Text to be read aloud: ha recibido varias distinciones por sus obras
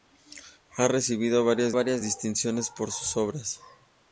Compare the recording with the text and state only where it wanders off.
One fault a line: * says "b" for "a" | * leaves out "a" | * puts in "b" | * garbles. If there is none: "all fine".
* puts in "varias"